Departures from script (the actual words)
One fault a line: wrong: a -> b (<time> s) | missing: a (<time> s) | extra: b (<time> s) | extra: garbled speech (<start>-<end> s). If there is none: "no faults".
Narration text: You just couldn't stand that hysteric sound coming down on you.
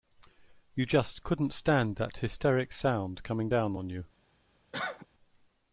no faults